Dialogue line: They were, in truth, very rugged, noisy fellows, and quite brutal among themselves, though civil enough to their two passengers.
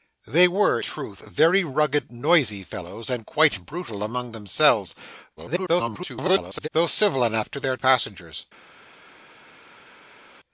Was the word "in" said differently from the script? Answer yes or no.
yes